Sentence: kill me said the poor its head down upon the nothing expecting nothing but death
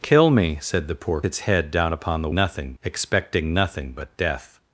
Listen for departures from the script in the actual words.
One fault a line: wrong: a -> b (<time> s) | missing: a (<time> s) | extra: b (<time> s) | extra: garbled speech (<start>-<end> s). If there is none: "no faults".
no faults